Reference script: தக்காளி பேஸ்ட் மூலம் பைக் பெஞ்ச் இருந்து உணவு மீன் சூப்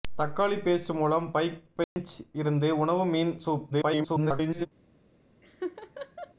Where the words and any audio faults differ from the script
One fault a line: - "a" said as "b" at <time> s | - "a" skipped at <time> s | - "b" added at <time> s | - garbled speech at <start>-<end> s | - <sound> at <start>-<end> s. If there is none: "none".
- dropout at 1.8-2.0 s
- garbled speech at 3.7-4.7 s
- laugh at 5.4-6.3 s